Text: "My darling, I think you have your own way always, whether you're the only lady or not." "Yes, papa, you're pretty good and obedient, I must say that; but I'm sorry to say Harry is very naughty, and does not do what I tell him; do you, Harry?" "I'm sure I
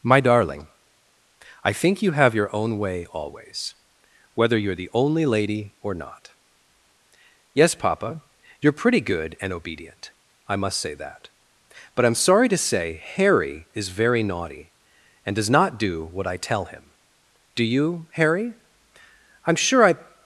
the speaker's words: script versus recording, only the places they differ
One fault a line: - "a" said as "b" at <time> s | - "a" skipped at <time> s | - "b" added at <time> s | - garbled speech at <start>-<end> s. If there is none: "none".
none